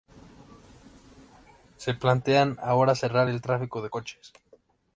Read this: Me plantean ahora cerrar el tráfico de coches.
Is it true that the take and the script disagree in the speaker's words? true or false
true